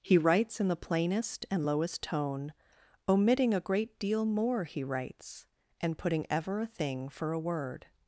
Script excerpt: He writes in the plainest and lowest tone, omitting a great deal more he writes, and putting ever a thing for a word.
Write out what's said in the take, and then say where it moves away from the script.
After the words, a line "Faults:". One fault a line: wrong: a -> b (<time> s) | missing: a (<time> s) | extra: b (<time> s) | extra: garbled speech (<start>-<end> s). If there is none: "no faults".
He writes in the plainest and lowest tone, omitting a great deal more he writes, and putting ever a thing for a word.
Faults:
no faults